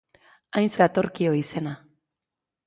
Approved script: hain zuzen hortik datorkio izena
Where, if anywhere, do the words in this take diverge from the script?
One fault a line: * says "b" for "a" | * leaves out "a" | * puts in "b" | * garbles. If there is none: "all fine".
* leaves out "zuzen hortik"